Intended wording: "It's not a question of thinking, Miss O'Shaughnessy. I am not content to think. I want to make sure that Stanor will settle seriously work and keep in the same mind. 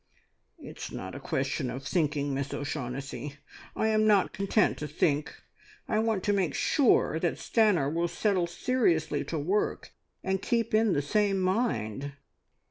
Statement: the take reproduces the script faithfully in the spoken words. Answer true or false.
false